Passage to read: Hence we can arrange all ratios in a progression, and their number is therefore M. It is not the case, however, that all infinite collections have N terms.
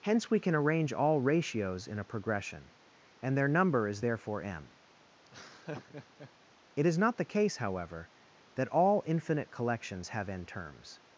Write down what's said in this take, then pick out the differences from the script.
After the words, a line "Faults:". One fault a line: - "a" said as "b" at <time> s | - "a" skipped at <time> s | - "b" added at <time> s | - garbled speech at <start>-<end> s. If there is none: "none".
Hence we can arrange all ratios in a progression, and their number is therefore M. It is not the case, however, that all infinite collections have N terms.
Faults:
none